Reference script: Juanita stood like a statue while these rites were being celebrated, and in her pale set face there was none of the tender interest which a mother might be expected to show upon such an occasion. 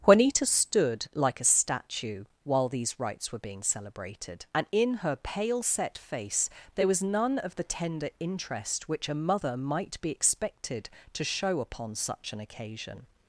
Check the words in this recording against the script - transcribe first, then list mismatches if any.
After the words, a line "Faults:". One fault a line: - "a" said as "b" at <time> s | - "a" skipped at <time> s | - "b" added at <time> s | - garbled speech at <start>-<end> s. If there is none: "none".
Juanita stood like a statue while these rites were being celebrated, and in her pale set face there was none of the tender interest which a mother might be expected to show upon such an occasion.
Faults:
none